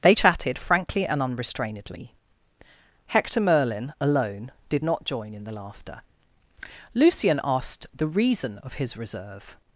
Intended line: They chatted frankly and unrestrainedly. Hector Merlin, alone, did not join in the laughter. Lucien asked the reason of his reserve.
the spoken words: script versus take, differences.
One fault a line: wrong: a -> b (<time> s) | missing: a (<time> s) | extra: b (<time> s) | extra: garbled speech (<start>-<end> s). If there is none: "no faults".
no faults